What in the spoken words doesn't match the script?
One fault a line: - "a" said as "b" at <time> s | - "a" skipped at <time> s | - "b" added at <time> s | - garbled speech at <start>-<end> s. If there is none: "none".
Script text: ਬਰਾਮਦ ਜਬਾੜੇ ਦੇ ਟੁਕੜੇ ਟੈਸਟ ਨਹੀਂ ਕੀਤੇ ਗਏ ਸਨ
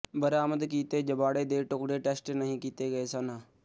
- "ਕੀਤੇ" added at 0.6 s